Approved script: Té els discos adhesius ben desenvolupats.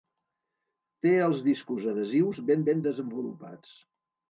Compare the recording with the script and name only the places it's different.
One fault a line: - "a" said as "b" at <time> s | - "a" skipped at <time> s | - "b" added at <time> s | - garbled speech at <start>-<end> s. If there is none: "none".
- "ben" added at 2.7 s